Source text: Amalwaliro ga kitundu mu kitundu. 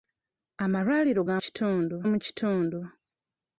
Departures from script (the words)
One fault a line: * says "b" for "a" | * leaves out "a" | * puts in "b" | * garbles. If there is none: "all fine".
all fine